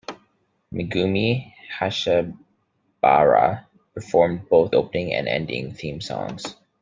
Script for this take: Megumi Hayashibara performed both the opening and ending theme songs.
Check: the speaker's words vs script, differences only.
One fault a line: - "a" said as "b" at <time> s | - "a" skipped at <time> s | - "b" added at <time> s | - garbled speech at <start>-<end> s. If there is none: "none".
- "the" skipped at 4.7 s